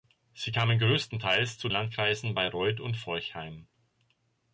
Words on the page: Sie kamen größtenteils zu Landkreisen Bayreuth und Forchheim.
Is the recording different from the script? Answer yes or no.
no